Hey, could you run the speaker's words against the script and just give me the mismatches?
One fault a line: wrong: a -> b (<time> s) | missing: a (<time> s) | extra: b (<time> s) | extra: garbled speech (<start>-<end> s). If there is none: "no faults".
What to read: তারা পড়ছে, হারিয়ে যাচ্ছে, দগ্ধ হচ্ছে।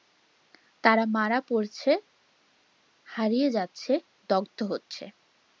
extra: মারা (1.1 s)